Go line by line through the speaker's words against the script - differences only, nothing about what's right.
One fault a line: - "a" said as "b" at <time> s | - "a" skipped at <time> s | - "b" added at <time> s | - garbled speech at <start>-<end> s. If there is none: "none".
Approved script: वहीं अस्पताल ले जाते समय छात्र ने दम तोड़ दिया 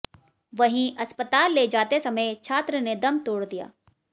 none